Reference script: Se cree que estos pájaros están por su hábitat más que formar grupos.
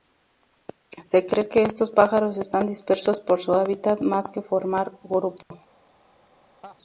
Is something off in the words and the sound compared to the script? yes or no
yes